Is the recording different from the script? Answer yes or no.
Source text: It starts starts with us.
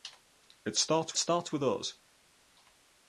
no